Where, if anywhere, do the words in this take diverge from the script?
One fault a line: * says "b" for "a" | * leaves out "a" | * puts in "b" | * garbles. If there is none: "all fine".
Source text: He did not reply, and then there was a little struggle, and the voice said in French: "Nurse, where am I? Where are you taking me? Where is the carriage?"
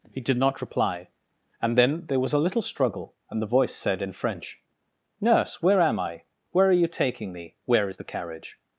all fine